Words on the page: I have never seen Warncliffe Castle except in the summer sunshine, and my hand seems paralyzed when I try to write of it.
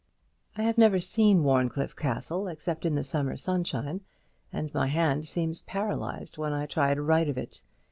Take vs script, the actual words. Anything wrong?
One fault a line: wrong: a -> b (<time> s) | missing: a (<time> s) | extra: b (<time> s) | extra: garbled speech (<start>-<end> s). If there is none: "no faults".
no faults